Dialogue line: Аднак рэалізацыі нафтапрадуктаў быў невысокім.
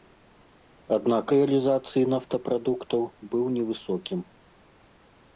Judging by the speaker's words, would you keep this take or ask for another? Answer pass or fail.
pass